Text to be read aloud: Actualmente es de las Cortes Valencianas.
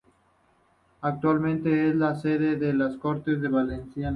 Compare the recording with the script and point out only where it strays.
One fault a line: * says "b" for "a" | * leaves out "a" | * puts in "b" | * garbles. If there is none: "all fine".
* puts in "la sede"